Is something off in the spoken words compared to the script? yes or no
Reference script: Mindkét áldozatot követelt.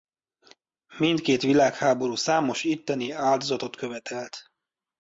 yes